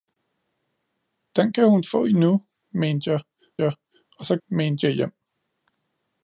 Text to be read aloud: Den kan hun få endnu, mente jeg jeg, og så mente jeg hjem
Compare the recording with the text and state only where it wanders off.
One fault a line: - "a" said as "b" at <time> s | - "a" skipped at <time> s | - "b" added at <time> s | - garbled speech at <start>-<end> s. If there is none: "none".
none